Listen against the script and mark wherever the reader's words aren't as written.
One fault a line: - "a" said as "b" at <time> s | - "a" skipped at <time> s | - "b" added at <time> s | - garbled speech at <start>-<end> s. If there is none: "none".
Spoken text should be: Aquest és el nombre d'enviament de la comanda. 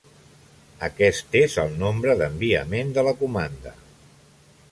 none